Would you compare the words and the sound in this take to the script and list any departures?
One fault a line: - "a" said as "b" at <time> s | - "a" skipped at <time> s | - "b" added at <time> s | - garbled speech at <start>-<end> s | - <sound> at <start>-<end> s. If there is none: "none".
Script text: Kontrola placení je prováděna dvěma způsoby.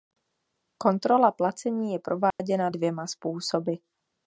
- dropout at 2.3-2.4 s